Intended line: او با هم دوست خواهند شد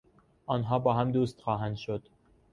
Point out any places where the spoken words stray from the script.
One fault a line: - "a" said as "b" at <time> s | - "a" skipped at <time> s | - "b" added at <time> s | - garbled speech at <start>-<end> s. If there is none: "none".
- "او" said as "آنها" at 0.5 s